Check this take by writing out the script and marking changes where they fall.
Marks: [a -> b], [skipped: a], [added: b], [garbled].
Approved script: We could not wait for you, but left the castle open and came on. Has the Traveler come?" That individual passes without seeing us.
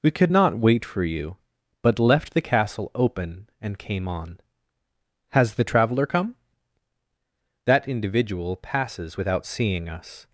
We could not wait for you, but left the castle open and came on. Has the Traveler come?" That individual passes without seeing us.